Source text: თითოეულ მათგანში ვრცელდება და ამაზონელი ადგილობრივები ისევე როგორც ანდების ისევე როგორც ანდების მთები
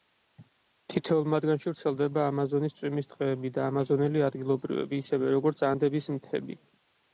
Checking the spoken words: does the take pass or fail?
fail